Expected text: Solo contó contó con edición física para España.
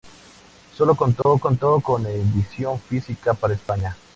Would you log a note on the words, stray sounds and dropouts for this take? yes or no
yes